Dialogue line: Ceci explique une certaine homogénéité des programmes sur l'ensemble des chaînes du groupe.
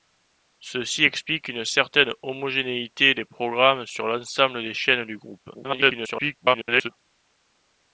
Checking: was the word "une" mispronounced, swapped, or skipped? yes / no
no